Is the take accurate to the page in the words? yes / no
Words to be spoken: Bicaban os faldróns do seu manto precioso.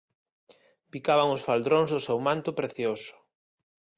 yes